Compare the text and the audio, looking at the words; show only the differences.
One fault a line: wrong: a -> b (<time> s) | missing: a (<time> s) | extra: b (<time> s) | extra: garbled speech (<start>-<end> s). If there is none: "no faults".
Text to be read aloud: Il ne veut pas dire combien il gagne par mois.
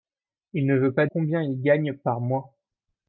missing: dire (1.1 s)